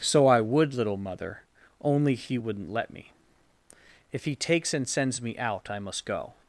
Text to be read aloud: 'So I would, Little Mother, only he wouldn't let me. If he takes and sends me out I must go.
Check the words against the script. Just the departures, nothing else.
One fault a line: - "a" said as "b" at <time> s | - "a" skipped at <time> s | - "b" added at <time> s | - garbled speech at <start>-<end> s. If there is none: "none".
none